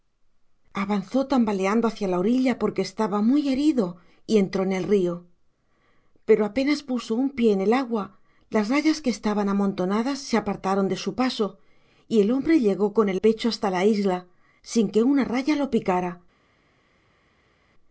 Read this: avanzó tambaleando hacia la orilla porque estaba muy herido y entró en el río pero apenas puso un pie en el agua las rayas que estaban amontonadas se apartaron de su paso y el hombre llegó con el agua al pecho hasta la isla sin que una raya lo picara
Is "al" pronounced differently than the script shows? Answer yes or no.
yes